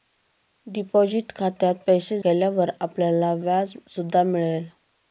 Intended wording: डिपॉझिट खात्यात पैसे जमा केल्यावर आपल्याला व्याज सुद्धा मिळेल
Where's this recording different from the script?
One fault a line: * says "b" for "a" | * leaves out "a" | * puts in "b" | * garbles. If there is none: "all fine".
* leaves out "जमा"